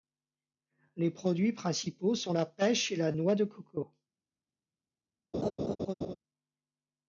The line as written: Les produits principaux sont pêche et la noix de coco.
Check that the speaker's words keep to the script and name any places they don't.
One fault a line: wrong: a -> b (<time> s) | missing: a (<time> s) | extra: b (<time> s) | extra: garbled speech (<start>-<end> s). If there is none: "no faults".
extra: la (2.3 s)